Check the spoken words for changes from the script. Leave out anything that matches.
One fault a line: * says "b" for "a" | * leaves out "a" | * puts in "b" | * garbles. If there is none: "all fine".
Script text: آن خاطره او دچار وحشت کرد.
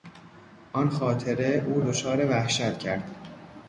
all fine